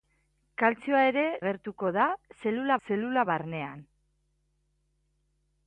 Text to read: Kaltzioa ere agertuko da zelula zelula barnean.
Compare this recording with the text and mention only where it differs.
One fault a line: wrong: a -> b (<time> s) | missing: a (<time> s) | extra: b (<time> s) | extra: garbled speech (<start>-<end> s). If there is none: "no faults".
no faults